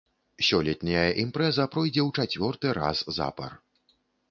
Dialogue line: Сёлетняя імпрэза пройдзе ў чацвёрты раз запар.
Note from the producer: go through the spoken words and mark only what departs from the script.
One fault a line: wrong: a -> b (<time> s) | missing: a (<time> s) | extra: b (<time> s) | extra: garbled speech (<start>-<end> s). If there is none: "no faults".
no faults